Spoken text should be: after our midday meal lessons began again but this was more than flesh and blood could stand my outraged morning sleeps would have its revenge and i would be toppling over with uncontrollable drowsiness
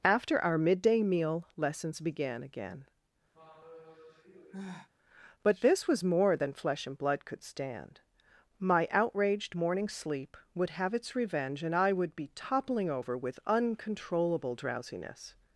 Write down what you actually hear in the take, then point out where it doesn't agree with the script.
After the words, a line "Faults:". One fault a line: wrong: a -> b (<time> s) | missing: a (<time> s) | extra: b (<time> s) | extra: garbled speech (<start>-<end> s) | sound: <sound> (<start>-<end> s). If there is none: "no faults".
after our midday meal lessons began again but this was more than flesh and blood could stand my outraged morning sleep would have its revenge and i would be toppling over with uncontrollable drowsiness
Faults:
sound: sigh (3.3-4.9 s)
wrong: sleeps -> sleep (9.9 s)